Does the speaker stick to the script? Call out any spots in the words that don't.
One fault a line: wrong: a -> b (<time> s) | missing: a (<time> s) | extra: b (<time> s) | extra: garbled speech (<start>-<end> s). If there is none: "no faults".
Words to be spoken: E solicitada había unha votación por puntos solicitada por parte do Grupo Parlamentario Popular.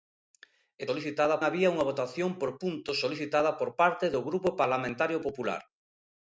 no faults